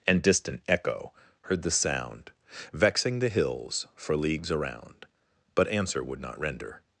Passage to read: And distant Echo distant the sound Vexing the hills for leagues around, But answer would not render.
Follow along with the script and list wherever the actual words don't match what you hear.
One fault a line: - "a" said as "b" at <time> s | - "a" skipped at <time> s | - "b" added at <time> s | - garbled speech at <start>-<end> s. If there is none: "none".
- "distant" said as "heard" at 1.4 s